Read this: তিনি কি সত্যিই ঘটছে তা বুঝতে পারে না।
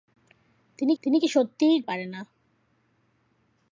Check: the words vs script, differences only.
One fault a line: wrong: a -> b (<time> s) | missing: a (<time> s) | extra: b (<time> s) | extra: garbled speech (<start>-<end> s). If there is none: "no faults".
extra: তিনি (1.0 s)
missing: ঘটছে তা বুঝতে (1.8 s)